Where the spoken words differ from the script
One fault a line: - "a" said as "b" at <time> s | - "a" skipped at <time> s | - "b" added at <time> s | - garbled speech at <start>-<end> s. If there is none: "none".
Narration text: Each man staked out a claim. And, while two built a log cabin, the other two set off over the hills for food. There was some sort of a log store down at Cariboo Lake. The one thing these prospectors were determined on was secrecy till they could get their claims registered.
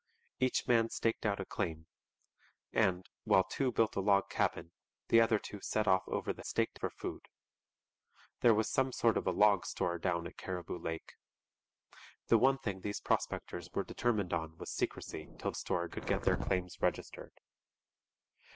- "hills" said as "staked" at 6.4 s
- "they" said as "store" at 15.6 s